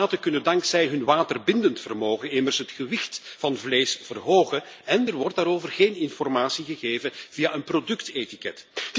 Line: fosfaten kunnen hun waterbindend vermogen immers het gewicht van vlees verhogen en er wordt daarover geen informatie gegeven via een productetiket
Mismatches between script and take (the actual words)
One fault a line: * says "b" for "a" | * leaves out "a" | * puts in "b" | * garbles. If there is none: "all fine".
* puts in "dankzij"